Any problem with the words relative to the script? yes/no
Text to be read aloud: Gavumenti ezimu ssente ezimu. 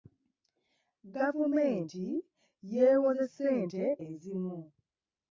yes